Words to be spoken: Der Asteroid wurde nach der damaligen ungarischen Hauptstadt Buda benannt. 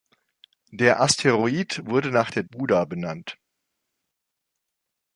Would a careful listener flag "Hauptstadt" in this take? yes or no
yes